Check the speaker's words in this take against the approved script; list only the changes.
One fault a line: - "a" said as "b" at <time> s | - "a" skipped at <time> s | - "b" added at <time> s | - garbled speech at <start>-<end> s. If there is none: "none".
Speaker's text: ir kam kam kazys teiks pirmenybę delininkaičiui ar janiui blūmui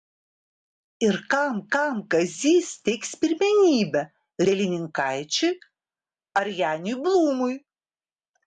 none